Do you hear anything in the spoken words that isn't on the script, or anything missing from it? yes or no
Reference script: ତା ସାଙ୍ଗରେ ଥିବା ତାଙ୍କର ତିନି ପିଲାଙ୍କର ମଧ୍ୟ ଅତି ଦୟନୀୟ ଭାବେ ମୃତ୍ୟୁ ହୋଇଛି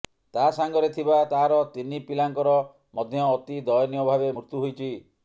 yes